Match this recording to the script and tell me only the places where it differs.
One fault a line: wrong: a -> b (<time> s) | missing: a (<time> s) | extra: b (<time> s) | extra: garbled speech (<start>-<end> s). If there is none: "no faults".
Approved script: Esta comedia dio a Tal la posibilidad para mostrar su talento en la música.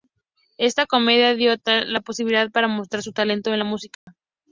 no faults